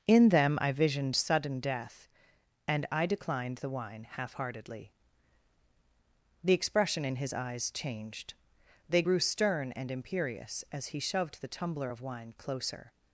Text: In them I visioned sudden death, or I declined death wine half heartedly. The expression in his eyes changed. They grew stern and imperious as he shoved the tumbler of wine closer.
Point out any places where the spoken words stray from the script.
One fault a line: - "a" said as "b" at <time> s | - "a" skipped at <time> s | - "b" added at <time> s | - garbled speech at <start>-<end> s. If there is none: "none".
- "or" said as "and" at 2.7 s
- "death" said as "the" at 3.6 s